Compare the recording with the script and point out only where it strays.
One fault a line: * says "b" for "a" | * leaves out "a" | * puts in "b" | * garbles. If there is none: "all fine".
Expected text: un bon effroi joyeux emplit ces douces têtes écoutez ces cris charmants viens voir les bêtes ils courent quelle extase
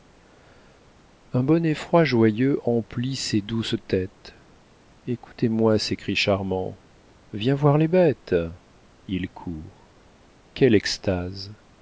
* puts in "moi"